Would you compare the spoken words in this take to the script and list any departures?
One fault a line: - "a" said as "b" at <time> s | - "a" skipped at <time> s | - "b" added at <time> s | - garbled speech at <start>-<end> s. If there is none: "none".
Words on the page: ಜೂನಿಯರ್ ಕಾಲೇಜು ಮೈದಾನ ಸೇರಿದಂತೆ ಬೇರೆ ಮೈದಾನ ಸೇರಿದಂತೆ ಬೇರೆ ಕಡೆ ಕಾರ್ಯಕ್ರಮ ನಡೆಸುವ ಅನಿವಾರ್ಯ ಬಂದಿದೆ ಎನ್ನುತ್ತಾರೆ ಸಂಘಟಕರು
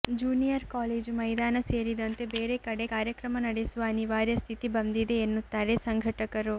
- "ಮೈದಾನ ಸೇರಿದಂತೆ ಬೇರೆ" skipped at 2.5 s
- "ಸ್ಥಿತಿ" added at 4.4 s